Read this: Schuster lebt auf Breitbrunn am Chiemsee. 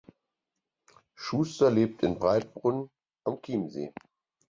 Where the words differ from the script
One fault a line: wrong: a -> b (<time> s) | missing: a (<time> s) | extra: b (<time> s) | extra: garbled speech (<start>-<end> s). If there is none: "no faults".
wrong: auf -> in (2.0 s)